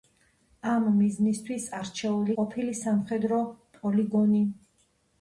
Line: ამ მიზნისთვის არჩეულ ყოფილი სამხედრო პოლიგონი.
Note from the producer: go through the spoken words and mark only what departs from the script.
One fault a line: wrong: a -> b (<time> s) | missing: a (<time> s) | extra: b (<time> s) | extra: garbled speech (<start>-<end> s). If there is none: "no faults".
no faults